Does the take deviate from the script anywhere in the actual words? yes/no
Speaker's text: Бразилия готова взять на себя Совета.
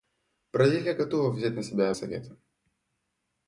no